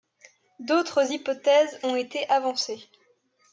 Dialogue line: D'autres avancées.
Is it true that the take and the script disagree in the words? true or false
true